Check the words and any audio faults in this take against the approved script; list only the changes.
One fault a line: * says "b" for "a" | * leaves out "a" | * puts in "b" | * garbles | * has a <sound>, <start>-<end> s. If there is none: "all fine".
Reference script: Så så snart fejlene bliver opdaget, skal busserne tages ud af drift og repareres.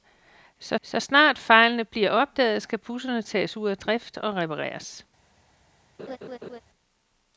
* has a laugh, 6.0-6.6 s